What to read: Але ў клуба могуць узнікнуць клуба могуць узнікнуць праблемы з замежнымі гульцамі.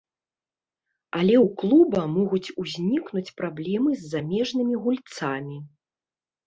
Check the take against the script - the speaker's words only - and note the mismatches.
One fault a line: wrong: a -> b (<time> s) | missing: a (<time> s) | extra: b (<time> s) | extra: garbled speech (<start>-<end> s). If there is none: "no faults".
missing: клуба могуць узнікнуць (3.3 s)